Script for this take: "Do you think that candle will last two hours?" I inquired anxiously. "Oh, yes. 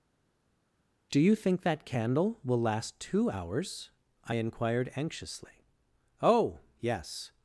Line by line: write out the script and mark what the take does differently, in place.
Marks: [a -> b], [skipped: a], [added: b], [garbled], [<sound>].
"Do you think that candle will last two hours?" I inquired anxiously. "Oh, yes.